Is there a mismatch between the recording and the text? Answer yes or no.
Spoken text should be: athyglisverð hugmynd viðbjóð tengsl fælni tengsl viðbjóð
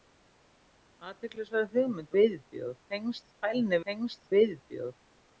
no